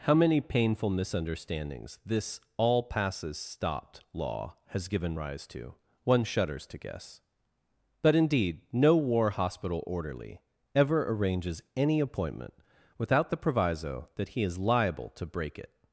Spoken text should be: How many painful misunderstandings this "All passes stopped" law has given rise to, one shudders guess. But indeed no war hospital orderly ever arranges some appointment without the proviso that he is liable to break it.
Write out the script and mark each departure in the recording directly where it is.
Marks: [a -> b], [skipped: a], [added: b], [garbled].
How many painful misunderstandings this "All passes stopped" law has given rise to, one shudders [added: to] guess. But indeed no war hospital orderly ever arranges [some -> any] appointment without the proviso that he is liable to break it.